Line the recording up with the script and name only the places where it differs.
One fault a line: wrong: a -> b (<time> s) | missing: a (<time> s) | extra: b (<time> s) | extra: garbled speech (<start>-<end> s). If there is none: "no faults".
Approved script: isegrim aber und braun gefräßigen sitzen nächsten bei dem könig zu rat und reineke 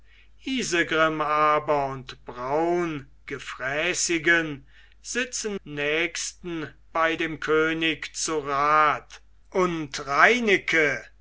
no faults